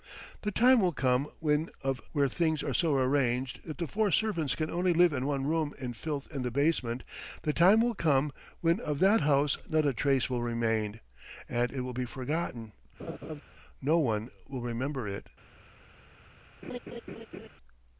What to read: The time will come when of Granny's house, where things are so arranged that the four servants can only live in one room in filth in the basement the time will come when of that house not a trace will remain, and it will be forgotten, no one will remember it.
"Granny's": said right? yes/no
no